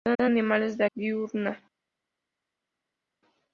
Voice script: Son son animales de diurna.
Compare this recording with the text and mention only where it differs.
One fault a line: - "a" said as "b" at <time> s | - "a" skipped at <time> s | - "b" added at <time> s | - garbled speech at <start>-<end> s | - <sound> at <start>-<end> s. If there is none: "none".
none